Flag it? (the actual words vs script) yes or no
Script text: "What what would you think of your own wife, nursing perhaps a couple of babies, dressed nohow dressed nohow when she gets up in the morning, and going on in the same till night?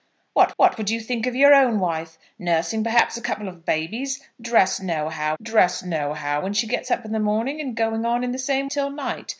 no